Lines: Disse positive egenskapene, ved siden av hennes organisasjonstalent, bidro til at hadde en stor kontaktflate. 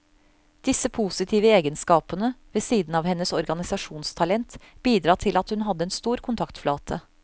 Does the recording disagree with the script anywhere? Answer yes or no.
yes